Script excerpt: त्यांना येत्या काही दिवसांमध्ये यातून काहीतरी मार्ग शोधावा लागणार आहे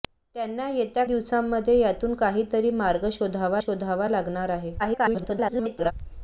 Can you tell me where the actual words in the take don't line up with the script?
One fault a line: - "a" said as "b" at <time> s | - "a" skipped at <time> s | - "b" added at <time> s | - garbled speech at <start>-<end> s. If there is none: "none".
- "काही" skipped at 1.0 s
- "शोधावा" added at 3.6 s
- garbled speech at 4.8-5.9 s